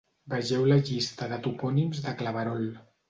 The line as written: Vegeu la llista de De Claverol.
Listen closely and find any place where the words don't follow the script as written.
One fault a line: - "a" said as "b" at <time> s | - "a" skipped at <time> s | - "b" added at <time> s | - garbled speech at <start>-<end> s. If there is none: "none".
- "Topònims" added at 1.5 s